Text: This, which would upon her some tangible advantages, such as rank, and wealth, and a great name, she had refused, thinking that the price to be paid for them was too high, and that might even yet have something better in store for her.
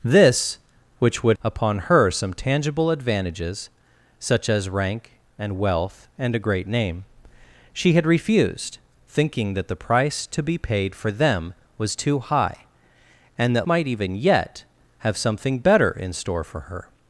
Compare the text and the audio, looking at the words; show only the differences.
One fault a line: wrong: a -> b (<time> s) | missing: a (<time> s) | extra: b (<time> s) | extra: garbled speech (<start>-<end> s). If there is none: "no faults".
no faults